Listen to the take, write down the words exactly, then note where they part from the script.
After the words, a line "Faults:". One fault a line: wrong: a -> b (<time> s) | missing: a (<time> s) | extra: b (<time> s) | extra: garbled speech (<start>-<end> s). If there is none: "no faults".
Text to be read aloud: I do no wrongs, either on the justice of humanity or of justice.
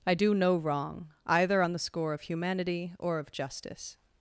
I do no wrong, either on the score of humanity or of justice.
Faults:
wrong: wrongs -> wrong (0.6 s)
wrong: justice -> score (1.8 s)